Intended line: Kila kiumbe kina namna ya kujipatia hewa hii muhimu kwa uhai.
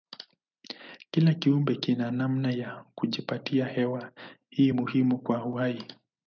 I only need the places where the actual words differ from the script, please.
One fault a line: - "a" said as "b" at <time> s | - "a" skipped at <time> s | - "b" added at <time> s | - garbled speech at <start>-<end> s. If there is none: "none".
none